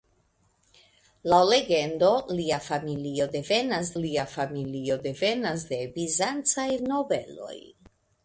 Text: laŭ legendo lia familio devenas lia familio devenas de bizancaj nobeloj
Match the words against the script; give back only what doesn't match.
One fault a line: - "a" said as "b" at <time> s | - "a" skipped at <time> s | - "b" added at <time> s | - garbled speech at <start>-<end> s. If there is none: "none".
none